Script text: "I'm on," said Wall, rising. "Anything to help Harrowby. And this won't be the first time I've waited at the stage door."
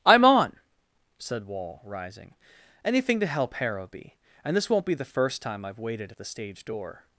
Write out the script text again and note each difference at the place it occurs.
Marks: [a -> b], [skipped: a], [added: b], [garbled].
"I'm on," said Wall, rising. "Anything to help Harrowby. And this won't be the first time I've waited at the stage door."